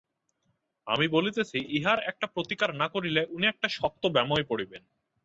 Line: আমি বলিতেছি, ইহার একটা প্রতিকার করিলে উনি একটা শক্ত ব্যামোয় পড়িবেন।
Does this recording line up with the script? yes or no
no